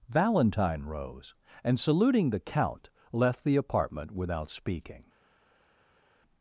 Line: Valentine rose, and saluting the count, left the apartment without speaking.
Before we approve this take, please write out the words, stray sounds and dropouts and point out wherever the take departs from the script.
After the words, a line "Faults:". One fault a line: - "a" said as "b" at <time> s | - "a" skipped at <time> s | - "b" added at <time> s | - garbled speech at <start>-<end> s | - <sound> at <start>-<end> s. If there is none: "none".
Valentine rose, and saluting the count, left the apartment without speaking.
Faults:
none